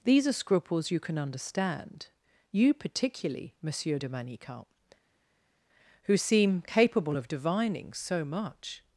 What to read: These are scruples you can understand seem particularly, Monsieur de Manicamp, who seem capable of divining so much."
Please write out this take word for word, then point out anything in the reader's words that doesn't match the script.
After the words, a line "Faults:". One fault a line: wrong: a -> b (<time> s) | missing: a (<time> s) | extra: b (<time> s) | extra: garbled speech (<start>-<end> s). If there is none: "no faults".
These are scruples you can understand you particularly, Monsieur de Manicamp, who seem capable of divining so much."
Faults:
wrong: seem -> you (2.5 s)